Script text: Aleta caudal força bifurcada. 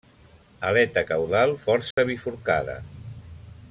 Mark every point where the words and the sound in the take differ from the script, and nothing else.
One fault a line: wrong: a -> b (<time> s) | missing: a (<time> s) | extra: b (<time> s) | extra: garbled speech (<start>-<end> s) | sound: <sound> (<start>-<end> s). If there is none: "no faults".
sound: dropout (1.9-2.0 s)